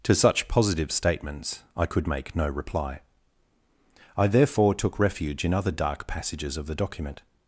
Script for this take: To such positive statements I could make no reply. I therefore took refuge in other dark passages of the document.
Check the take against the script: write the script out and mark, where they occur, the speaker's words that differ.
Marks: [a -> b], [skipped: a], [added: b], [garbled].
To such positive statements I could make no reply. I therefore took refuge in other dark passages of the document.